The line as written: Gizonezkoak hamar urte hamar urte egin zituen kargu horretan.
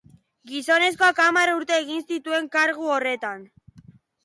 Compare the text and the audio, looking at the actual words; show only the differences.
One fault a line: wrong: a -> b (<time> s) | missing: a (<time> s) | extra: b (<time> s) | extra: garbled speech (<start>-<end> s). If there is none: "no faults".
missing: hamar urte (1.8 s)